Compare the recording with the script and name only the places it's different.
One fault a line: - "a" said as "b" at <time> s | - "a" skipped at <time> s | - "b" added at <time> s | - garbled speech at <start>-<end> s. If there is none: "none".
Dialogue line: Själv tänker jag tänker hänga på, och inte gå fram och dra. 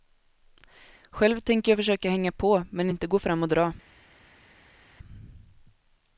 - "tänker" said as "försöka" at 1.8 s
- "och" said as "men" at 2.7 s